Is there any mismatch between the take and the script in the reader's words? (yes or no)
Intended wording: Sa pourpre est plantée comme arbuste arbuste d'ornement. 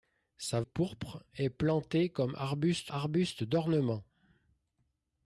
no